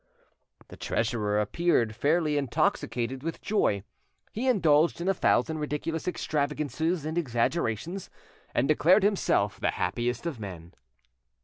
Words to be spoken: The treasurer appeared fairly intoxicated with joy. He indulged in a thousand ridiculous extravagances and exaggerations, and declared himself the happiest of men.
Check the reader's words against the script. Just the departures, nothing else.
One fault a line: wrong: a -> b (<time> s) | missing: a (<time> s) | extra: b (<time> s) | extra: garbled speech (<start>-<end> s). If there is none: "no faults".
no faults